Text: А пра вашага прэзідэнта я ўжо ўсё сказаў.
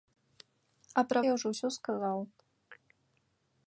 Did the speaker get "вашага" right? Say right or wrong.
wrong